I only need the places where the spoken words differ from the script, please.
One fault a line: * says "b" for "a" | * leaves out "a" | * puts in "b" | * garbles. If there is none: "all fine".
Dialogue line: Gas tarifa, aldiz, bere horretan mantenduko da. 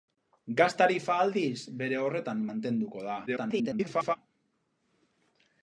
* garbles